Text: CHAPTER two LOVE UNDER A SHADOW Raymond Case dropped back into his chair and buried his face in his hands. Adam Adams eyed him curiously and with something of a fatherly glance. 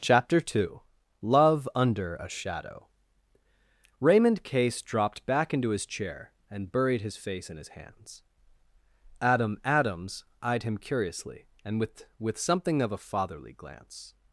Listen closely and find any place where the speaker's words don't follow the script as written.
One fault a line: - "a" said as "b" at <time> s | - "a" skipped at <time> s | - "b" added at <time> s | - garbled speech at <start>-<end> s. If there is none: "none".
- "with" added at 12.2 s